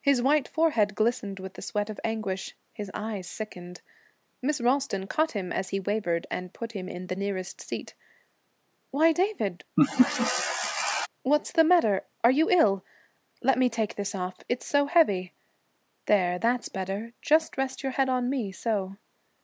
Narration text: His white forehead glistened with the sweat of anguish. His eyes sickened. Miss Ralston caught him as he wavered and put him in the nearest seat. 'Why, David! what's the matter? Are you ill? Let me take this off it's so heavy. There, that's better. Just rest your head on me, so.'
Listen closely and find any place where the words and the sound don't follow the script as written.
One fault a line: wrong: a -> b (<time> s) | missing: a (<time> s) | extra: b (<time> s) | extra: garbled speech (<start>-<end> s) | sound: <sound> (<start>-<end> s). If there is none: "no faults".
sound: laugh (9.8-11.1 s)